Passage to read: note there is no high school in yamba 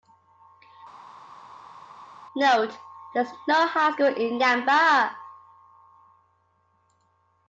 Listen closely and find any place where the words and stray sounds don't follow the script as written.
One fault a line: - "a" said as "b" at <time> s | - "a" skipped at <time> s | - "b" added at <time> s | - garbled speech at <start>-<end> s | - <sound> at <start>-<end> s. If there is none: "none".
none